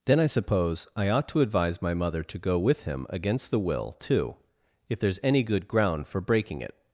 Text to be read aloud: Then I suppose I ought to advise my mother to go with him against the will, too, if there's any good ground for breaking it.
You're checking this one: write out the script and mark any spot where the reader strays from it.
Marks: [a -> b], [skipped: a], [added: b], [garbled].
Then I suppose I ought to advise my mother to go with him against the will, too, if there's any good ground for breaking it.